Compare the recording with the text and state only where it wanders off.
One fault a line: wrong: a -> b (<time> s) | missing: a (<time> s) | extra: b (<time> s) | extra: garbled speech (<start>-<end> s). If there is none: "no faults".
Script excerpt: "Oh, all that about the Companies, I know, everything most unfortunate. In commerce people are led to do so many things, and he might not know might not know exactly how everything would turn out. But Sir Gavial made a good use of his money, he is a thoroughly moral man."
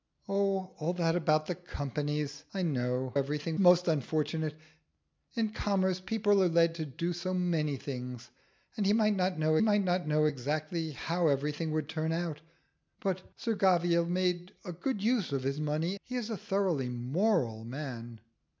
no faults